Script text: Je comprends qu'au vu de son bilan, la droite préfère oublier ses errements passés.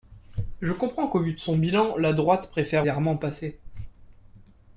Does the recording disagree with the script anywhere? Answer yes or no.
yes